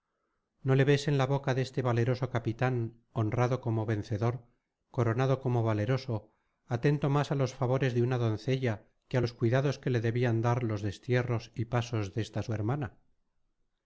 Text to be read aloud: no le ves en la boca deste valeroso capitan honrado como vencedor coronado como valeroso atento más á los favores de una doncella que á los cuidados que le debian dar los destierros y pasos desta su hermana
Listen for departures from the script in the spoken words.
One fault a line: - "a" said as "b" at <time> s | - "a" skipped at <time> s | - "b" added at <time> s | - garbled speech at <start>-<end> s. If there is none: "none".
none